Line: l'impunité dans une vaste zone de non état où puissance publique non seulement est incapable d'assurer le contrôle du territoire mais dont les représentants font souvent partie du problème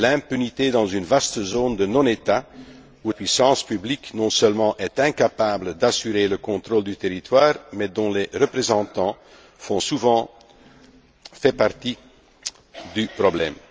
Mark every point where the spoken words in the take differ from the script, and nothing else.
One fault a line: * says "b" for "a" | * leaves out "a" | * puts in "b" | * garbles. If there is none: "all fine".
all fine